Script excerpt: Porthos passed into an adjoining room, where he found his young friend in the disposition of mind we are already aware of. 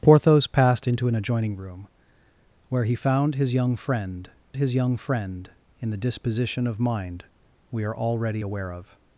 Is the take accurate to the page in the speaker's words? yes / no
no